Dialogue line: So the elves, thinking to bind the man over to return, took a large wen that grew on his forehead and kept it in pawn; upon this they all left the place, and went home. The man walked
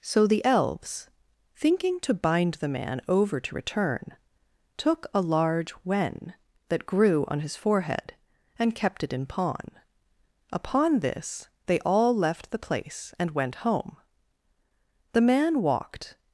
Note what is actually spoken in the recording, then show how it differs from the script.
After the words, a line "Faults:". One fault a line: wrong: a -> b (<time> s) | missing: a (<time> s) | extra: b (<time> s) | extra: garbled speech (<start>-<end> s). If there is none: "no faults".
So the elves, thinking to bind the man over to return, took a large wen that grew on his forehead and kept it in pawn; upon this they all left the place, and went home. The man walked
Faults:
no faults